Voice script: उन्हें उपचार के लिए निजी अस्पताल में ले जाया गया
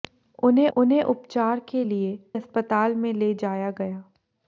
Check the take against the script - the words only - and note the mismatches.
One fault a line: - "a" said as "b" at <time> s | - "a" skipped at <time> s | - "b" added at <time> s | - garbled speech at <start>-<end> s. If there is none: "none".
- "उन्हें" added at 0.8 s
- "निजी" skipped at 2.1 s